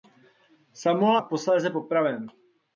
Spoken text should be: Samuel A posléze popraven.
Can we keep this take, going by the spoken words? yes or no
yes